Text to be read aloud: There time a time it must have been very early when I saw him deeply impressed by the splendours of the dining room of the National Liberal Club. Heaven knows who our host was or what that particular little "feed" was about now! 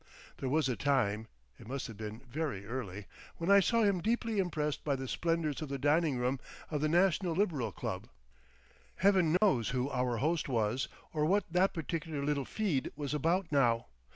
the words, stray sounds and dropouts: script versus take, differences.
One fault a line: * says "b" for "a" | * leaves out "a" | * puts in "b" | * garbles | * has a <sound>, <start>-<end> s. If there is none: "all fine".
* says "was" for "time"
* has a dropout, 9.4-9.4 s